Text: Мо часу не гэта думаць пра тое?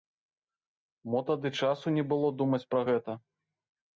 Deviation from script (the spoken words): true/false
true